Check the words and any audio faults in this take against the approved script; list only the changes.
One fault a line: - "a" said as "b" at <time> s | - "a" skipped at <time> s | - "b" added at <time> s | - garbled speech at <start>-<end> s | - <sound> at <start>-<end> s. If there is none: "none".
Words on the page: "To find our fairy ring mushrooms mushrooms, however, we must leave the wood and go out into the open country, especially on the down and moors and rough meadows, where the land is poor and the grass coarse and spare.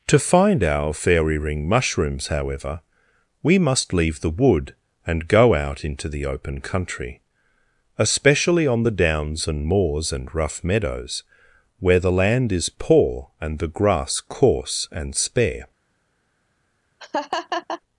- "mushrooms" skipped at 2.3 s
- "down" said as "downs" at 8.9 s
- laugh at 17.0-17.8 s